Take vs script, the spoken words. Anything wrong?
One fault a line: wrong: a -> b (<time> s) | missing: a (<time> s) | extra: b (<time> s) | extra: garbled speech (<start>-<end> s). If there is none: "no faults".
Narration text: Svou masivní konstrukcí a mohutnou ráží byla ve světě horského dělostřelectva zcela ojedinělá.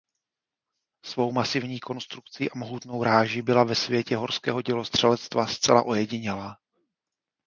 no faults